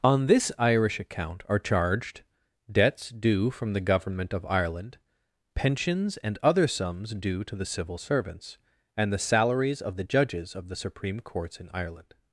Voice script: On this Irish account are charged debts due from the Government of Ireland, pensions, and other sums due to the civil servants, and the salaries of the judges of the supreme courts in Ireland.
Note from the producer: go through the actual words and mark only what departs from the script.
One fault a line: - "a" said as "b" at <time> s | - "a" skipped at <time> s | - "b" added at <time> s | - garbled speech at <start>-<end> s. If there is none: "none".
none